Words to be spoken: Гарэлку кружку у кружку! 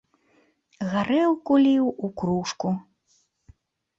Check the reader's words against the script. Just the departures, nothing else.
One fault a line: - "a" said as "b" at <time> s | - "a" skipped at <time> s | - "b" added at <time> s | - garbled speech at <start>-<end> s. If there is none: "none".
- "кружку" said as "ліў" at 1.6 s